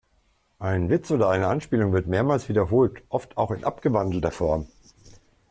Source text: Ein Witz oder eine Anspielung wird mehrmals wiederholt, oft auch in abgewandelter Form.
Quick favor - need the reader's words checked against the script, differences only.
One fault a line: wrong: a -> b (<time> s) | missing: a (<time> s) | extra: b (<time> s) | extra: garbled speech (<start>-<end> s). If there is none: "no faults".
no faults